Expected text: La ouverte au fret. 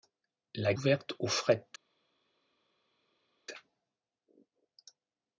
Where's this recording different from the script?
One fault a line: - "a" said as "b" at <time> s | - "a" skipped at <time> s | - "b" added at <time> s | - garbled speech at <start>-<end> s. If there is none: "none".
none